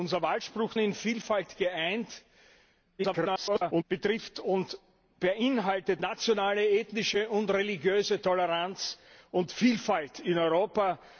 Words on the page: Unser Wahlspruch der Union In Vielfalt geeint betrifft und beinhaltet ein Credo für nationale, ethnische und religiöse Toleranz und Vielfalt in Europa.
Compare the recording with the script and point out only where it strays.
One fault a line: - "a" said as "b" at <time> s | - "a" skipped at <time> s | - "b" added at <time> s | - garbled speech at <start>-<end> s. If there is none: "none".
- "der Union" skipped at 0.7 s
- garbled speech at 3.0-3.8 s
- "ein Credo für" skipped at 6.0 s